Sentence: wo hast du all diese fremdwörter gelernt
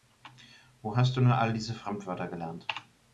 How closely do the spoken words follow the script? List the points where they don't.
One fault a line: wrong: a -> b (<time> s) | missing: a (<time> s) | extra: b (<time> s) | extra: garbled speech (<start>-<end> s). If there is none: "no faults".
extra: nur (1.2 s)